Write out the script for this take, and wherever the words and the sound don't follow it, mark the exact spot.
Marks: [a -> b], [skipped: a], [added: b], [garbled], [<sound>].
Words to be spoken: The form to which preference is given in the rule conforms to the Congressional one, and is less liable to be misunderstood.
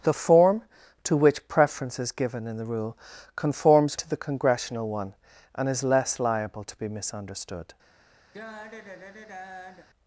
The form to which preference is given in the rule conforms to the Congressional one, and is less liable to be misunderstood. [sigh]